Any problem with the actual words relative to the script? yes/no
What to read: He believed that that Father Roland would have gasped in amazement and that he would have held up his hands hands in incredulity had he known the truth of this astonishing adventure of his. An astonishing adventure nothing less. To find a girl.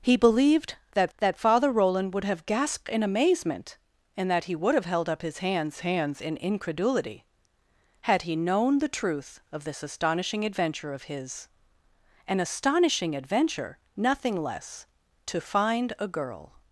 no